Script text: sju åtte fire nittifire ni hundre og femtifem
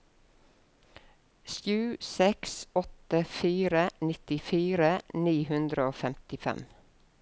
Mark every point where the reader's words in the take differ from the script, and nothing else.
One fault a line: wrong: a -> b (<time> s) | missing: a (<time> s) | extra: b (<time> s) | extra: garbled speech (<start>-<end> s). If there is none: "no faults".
extra: seks (2.0 s)